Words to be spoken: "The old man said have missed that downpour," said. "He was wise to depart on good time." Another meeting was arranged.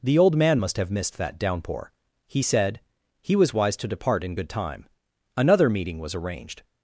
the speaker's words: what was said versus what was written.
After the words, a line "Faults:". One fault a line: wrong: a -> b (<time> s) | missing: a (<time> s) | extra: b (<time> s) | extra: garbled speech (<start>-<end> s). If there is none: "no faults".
"The old man must have missed that downpour," he said. "He was wise to depart in good time." Another meeting was arranged.
Faults:
wrong: said -> must (0.6 s)
extra: he (2.3 s)
wrong: on -> in (4.2 s)